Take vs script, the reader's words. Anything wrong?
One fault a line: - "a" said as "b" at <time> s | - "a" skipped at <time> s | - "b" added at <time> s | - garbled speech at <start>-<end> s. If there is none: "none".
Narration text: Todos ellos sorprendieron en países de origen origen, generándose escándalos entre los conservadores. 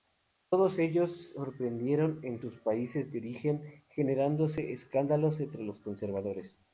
- "sus" added at 2.4 s
- "origen" skipped at 3.8 s